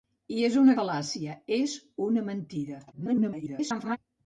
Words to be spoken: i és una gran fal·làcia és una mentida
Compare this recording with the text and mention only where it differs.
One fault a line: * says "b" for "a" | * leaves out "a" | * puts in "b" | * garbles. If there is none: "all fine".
* leaves out "gran"
* garbles